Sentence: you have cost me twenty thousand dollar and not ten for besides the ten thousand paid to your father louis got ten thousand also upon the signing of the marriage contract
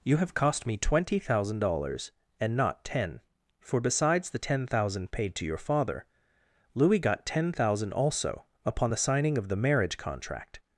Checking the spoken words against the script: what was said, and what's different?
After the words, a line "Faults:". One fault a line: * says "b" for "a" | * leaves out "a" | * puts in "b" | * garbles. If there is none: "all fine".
you have cost me twenty thousand dollars and not ten for besides the ten thousand paid to your father louis got ten thousand also upon the signing of the marriage contract
Faults:
* says "dollars" for "dollar"